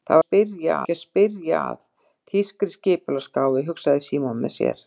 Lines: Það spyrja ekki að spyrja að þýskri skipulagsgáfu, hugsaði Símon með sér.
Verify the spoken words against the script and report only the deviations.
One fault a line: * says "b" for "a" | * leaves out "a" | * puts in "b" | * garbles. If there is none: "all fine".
all fine